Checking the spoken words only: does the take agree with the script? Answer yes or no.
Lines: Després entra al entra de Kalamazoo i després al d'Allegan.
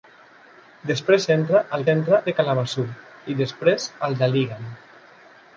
yes